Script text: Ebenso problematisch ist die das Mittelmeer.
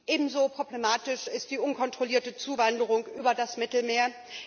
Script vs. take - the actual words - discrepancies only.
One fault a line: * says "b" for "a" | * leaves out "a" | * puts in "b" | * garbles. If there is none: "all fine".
* puts in "unkontrollierte Zuwanderung über"